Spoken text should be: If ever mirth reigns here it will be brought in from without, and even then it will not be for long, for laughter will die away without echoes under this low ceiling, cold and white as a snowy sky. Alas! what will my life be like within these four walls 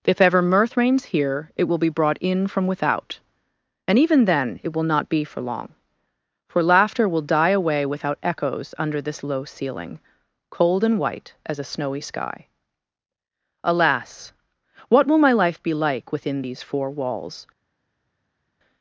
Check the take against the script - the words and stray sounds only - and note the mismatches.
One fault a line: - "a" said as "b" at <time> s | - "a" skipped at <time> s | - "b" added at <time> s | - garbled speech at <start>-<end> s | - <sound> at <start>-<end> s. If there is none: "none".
none